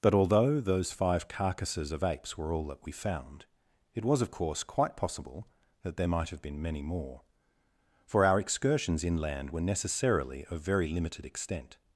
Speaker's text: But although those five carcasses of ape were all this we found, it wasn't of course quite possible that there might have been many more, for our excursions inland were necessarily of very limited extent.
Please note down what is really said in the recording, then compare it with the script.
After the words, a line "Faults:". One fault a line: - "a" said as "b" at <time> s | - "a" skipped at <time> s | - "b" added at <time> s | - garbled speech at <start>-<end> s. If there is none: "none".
But although those five carcasses of apes were all that we found, it was of course quite possible that there might have been many more, for our excursions inland were necessarily of very limited extent.
Faults:
- "ape" said as "apes" at 2.0 s
- "this" said as "that" at 2.7 s
- "wasn't" said as "was" at 4.1 s